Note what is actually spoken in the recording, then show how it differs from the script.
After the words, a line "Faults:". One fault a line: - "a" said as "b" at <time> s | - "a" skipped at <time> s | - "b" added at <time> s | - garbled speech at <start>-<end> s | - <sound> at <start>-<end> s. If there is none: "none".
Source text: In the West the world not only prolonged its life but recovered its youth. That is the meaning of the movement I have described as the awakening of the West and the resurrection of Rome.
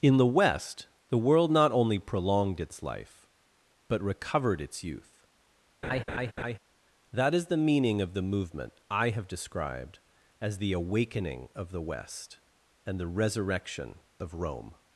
In the West the world not only prolonged its life but recovered its youth. That is the meaning of the movement I have described as the awakening of the West and the resurrection of Rome.
Faults:
- laugh at 5.8-6.6 s